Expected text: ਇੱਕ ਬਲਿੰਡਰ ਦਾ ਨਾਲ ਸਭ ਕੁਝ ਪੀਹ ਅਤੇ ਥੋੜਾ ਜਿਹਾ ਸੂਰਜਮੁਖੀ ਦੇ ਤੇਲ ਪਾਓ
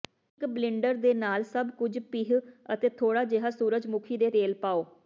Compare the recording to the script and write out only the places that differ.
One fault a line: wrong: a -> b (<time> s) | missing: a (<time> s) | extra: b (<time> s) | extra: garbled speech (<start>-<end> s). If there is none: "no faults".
wrong: ਦਾ -> ਦੇ (0.9 s)